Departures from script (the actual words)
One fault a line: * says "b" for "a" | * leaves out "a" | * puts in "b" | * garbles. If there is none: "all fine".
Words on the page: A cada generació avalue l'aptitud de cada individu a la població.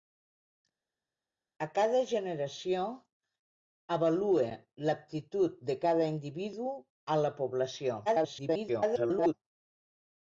* garbles